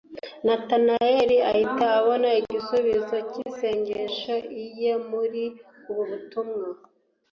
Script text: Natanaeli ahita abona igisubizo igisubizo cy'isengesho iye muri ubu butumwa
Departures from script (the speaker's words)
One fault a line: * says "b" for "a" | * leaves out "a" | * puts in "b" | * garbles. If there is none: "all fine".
* leaves out "igisubizo"